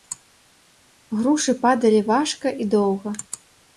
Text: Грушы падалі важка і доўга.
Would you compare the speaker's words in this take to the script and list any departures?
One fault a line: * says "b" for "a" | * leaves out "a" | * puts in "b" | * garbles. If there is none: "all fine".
all fine